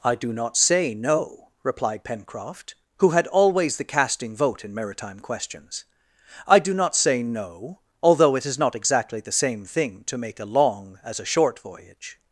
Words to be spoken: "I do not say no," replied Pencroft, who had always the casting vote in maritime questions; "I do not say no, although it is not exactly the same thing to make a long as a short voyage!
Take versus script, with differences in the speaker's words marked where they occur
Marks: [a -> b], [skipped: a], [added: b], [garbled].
"I do not say no," replied Pencroft, who had always the casting vote in maritime questions; "I do not say no, although it is not exactly the same thing to make a long as a short voyage!